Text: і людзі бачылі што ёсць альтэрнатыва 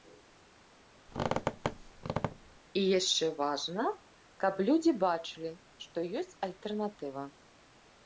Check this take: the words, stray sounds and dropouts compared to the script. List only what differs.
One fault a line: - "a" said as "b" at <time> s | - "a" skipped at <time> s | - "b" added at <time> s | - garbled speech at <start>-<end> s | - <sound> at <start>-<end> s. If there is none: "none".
- squeak at 1.1-2.6 s
- "яшчэ важна каб" added at 3.0 s